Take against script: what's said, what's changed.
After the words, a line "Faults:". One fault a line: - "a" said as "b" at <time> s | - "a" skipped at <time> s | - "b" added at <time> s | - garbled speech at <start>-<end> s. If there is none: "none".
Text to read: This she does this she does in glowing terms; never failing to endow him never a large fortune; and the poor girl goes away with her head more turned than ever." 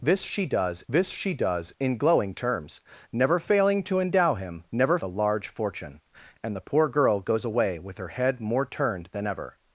This she does this she does in glowing terms; never failing to endow him never a large fortune; and the poor girl goes away with her head more turned than ever."
Faults:
none